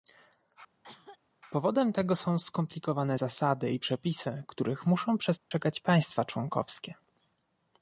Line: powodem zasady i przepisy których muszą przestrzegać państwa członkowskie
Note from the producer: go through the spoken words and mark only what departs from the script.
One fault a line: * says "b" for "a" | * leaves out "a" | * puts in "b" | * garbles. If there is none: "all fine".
* puts in "tego są skomplikowane"